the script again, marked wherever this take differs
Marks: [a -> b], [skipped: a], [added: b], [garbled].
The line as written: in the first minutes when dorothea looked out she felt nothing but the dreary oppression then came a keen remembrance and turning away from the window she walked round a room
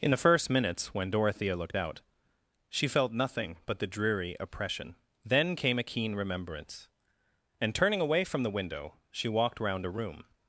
in the first minutes when dorothea looked out she felt nothing but the dreary oppression then came a keen remembrance and turning away from the window she walked round a room